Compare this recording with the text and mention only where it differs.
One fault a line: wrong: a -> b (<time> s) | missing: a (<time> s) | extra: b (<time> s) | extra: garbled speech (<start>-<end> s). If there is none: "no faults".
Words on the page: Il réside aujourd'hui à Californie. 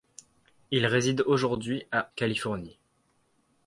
no faults